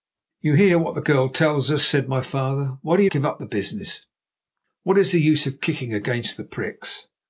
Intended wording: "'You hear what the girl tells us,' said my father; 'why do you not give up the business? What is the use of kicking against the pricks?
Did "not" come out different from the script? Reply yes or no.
yes